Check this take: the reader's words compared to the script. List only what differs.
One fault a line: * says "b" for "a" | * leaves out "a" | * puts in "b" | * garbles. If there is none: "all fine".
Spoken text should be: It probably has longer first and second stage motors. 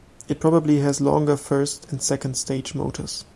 all fine